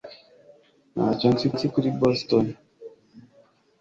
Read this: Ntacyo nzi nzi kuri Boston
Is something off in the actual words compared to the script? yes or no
no